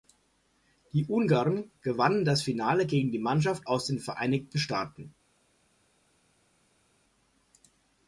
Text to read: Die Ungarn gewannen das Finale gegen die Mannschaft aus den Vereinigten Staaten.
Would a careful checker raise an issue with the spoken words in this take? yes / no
no